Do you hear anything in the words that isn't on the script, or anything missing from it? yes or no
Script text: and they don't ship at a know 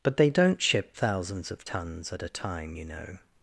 yes